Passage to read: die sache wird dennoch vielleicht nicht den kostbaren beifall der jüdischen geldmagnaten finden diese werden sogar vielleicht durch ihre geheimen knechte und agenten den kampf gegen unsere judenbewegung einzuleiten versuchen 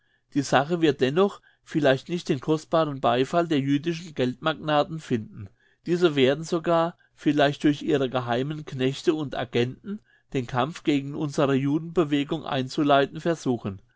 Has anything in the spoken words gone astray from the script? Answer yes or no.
no